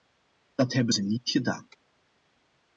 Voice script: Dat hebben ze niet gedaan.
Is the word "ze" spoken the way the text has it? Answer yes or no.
yes